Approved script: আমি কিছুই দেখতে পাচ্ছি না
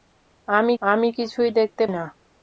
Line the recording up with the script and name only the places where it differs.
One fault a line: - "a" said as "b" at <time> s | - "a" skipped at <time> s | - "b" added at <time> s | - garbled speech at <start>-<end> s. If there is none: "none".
- "আমি" added at 0.8 s
- "পাচ্ছি" skipped at 1.8 s